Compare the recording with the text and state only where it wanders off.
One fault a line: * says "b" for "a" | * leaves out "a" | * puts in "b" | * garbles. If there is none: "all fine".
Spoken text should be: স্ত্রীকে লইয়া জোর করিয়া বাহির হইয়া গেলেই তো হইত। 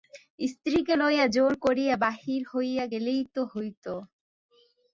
all fine